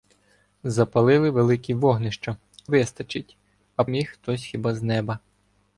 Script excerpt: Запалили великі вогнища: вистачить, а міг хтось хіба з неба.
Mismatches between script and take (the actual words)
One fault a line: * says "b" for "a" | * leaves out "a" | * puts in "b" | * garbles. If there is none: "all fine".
all fine